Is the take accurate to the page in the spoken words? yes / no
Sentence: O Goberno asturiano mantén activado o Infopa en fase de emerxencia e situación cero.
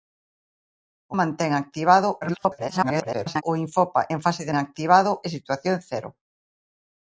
no